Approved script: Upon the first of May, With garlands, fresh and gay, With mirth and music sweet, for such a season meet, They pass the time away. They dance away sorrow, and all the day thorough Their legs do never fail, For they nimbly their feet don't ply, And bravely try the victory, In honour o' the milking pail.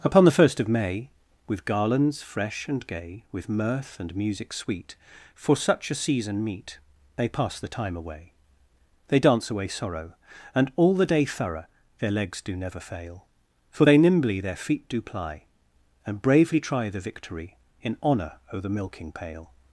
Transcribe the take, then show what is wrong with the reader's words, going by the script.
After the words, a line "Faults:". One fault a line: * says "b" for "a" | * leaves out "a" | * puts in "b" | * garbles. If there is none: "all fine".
Upon the first of May, With garlands, fresh and gay, With mirth and music sweet, for such a season meet, They pass the time away. They dance away sorrow, and all the day thorough Their legs do never fail, For they nimbly their feet do ply, And bravely try the victory, In honour o' the milking pail.
Faults:
* says "do" for "don't"